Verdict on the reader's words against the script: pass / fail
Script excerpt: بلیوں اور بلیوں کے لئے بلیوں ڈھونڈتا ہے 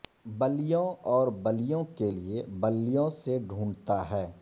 fail